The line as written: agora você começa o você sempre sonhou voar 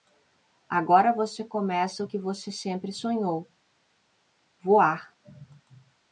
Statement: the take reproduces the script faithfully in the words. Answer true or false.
false